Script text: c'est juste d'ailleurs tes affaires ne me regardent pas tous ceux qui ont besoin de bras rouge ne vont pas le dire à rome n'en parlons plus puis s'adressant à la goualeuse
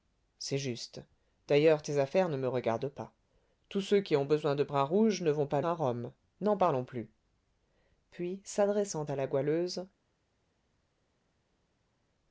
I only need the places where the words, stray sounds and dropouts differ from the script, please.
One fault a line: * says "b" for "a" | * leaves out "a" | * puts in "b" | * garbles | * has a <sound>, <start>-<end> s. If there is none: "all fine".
* leaves out "le dire"